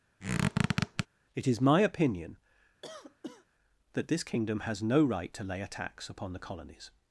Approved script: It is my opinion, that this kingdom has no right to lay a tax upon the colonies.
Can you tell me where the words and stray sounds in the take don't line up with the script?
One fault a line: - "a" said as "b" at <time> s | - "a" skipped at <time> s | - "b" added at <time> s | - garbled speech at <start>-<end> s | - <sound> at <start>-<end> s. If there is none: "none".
- squeak at 0.2-1.1 s
- cough at 2.8-3.5 s